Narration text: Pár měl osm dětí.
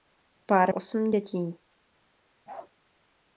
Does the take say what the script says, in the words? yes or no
no